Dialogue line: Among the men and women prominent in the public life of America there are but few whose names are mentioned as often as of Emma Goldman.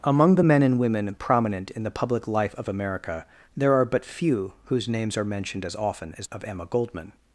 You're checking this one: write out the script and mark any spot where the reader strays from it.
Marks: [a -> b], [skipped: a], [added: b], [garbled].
Among the men and women prominent in the public life of America there are but few whose names are mentioned as often as of Emma Goldman.